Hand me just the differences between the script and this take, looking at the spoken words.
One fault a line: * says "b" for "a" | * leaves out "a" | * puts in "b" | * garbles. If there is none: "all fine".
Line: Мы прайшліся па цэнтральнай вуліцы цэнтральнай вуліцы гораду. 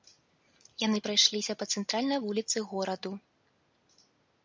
* says "Яны" for "Мы"
* leaves out "цэнтральнай вуліцы"